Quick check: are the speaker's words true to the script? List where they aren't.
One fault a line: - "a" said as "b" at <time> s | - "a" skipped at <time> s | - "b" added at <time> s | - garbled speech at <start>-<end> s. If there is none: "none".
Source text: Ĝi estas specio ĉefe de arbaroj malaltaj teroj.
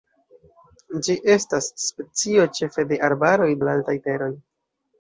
none